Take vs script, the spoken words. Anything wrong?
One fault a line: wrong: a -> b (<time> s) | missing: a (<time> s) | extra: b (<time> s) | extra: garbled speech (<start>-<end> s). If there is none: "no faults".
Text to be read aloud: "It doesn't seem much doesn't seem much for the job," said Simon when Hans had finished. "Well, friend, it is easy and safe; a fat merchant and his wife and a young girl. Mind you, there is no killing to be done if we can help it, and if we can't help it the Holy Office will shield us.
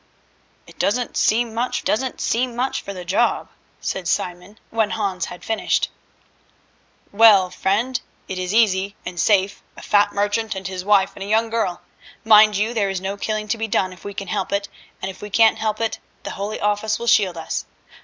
no faults